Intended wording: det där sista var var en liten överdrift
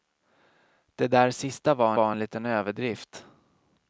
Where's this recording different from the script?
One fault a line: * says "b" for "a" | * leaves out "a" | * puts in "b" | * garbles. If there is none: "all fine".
all fine